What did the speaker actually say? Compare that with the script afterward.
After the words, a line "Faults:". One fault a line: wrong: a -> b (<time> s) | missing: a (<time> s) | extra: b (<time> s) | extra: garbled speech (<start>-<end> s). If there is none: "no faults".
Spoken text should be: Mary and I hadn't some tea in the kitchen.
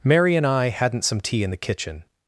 Mary and I hadn't some tea in the kitchen.
Faults:
no faults